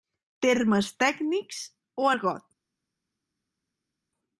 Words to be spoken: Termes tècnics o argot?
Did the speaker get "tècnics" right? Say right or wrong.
right